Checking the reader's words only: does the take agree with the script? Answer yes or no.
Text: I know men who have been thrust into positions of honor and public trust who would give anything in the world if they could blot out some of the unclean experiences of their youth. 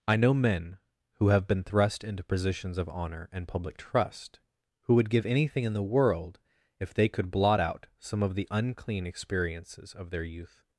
yes